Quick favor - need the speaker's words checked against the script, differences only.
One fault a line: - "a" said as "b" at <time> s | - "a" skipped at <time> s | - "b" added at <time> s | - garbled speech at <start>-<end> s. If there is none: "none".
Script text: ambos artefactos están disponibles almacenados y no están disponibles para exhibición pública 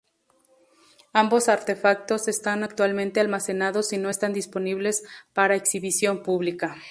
- "disponibles" said as "actualmente" at 2.6 s